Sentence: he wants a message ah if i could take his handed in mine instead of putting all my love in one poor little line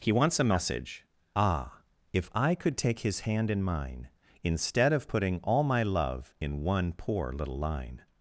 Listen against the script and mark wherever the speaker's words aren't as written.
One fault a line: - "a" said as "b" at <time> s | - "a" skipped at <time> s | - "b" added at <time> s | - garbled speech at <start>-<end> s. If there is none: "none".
- "handed" said as "hand" at 3.2 s